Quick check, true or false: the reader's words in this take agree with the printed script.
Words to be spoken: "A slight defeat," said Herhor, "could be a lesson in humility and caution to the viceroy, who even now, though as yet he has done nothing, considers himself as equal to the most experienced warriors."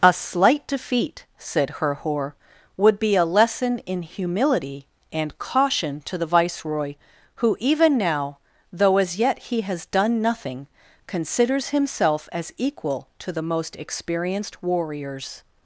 false